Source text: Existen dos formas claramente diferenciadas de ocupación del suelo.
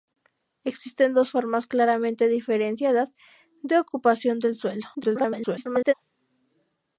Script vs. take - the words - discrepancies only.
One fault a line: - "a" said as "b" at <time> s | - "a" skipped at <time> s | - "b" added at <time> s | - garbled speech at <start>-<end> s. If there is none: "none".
- garbled speech at 4.9-5.9 s